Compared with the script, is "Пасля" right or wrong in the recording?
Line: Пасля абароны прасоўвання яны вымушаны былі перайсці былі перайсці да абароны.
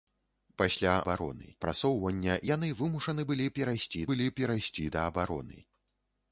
right